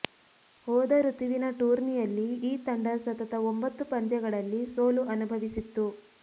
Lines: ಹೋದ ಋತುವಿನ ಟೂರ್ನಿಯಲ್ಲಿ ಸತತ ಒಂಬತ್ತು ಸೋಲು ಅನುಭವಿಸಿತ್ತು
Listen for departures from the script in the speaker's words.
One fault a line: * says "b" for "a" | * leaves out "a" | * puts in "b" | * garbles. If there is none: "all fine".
* puts in "ಈ ತಂಡ"
* puts in "ಪಂದ್ಯಗಳಲ್ಲಿ"